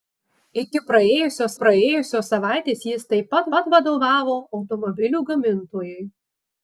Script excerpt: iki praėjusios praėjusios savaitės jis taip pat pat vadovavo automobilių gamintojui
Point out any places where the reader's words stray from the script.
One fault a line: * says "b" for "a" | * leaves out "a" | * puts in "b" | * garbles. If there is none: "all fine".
all fine